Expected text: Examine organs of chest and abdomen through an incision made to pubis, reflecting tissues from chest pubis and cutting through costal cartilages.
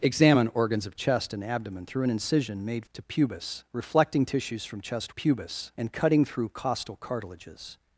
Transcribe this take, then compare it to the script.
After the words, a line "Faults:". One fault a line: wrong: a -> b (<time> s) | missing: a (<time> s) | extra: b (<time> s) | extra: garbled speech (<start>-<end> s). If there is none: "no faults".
Examine organs of chest and abdomen through an incision made to pubis, reflecting tissues from chest pubis and cutting through costal cartilages.
Faults:
no faults